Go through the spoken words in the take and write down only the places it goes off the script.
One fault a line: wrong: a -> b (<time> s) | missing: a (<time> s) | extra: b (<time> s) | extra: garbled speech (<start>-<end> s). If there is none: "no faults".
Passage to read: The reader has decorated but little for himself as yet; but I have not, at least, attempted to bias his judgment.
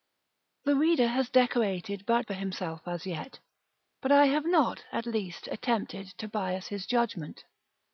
missing: little (2.2 s)